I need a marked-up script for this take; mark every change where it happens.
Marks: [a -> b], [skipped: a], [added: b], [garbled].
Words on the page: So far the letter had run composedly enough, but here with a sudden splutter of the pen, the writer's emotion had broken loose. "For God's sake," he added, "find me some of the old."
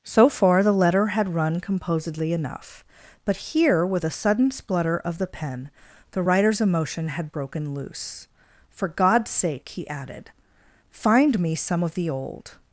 So far the letter had run composedly enough, but here with a sudden splutter of the pen, the writer's emotion had broken loose. "For God's sake," he added, "find me some of the old."